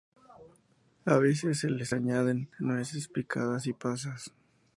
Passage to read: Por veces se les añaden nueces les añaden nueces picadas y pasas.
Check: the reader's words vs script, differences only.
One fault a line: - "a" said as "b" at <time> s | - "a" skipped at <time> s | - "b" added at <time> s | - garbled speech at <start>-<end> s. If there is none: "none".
- "Por" said as "A" at 1.1 s
- "les añaden nueces" skipped at 3.1 s